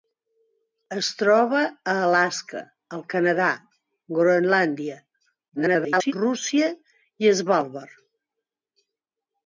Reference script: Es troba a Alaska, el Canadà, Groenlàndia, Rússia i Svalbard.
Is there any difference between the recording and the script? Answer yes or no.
yes